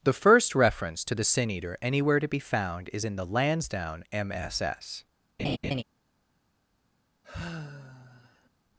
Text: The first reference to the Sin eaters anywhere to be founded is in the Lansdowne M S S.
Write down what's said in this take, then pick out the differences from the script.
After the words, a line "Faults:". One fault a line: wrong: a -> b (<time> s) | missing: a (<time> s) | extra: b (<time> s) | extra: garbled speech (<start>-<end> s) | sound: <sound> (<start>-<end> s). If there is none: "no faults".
The first reference to the Sin eater anywhere to be found is in the Lansdowne M S S.
Faults:
wrong: eaters -> eater (1.5 s)
wrong: founded -> found (2.4 s)
sound: laugh (5.4-5.8 s)
sound: sigh (7.2-8.5 s)